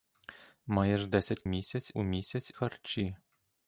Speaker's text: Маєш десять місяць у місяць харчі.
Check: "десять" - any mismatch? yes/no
no